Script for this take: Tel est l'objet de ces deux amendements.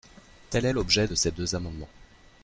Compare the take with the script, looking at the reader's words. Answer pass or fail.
pass